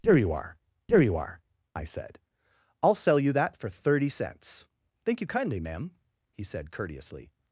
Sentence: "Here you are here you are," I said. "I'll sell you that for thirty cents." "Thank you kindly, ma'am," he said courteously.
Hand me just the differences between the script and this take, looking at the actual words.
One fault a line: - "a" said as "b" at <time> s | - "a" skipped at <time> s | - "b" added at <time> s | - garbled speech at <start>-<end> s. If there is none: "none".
none